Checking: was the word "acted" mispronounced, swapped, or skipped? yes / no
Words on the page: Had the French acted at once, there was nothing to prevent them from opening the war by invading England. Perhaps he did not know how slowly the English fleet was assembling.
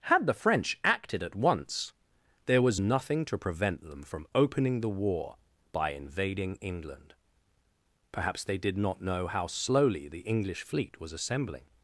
no